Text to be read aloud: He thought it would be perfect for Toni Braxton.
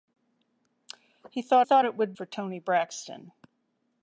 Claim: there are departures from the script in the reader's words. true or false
true